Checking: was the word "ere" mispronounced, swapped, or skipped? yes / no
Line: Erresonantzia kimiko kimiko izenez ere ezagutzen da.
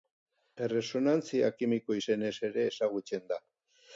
no